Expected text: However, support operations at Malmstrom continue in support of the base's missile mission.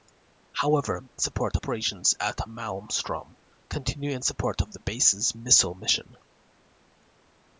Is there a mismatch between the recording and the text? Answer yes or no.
no